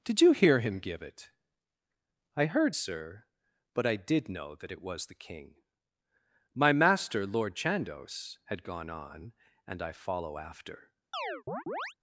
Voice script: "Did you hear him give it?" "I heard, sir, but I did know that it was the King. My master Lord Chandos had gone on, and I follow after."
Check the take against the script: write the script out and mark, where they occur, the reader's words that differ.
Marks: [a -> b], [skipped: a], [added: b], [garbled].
"Did you hear him give it?" "I heard, sir, but I did know that it was the King. My master Lord Chandos had gone on, and I follow after."